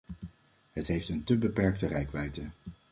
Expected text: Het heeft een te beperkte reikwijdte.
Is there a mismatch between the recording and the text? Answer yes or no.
no